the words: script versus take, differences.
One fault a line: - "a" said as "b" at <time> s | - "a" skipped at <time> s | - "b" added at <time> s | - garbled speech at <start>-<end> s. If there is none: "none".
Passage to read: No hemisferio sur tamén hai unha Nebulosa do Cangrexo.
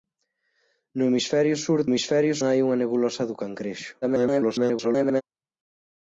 - "tamén" said as "hemisferio" at 1.9 s
- garbled speech at 4.0-5.2 s